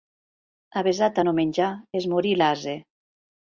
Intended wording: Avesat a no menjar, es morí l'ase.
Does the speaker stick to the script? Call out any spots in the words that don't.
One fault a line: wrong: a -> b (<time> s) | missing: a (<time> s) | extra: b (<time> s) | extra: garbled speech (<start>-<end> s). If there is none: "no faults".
no faults